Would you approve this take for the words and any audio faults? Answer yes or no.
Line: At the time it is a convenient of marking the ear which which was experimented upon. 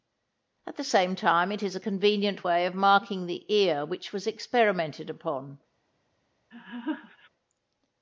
no